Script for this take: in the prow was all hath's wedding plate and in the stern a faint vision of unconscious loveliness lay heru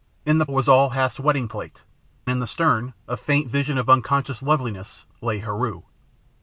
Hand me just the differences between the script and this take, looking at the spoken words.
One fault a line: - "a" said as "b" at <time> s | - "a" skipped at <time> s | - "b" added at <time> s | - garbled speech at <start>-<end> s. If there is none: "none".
- "prow" skipped at 0.5 s
- "and" skipped at 1.8 s